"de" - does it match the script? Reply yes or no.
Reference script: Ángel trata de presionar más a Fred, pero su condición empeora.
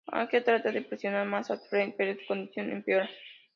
yes